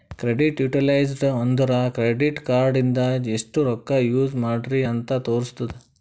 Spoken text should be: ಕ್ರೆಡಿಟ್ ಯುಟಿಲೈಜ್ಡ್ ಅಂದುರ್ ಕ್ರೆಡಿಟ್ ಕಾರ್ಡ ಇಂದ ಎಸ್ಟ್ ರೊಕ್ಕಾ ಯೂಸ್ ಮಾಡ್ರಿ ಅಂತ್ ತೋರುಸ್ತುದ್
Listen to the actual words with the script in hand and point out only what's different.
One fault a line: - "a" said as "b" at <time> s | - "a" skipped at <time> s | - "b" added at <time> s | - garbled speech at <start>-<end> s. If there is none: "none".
none